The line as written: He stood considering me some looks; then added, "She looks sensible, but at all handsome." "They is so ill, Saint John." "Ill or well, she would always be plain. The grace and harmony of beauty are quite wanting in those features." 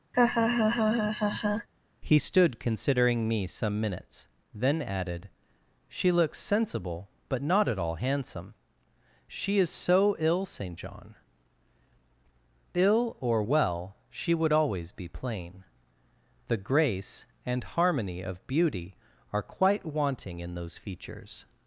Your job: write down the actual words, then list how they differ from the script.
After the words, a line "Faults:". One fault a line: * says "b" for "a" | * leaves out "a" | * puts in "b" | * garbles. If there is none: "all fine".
He stood considering me some minutes; then added, "She looks sensible, but not at all handsome." "She is so ill, Saint John." "Ill or well, she would always be plain. The grace and harmony of beauty are quite wanting in those features."
Faults:
* says "minutes" for "looks"
* puts in "not"
* says "She" for "They"